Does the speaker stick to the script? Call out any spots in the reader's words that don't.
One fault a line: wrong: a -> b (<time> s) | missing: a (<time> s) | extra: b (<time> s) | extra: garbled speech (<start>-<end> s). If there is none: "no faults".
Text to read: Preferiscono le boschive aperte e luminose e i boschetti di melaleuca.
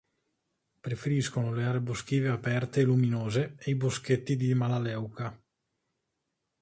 extra: aree (1.6 s)